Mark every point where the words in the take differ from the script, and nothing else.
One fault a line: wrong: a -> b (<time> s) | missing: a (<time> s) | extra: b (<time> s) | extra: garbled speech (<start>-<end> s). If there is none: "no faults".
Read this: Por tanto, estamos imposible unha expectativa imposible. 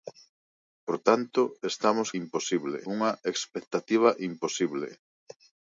no faults